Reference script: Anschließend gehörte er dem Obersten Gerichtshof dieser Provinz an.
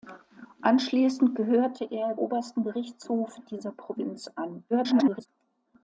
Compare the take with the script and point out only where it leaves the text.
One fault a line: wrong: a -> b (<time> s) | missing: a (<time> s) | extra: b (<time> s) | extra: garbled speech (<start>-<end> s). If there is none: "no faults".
missing: dem (2.1 s)
extra: garbled speech (4.7-5.3 s)